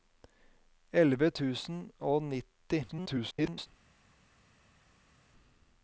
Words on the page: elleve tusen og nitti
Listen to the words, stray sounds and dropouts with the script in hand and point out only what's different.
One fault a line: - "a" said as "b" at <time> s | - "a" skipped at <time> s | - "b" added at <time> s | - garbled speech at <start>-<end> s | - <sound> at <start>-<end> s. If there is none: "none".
- garbled speech at 2.9-3.7 s